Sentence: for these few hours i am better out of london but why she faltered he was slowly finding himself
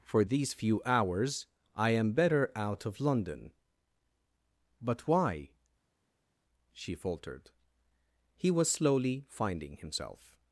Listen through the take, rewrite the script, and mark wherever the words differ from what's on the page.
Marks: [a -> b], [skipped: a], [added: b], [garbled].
for these few hours i am better out of london but why she faltered he was slowly finding himself